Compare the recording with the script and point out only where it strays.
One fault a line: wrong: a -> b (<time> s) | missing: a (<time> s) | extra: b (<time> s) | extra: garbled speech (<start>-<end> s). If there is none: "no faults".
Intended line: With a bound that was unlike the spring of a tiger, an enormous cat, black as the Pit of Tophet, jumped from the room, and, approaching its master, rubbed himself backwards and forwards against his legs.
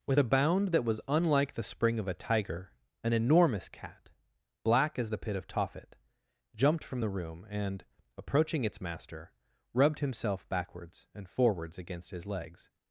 no faults